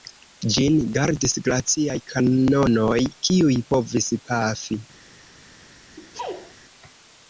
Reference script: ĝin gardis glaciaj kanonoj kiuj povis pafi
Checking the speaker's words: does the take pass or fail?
pass